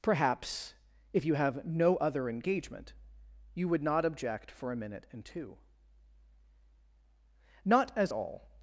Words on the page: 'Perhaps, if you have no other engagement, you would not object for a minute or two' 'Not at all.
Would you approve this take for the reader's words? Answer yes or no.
no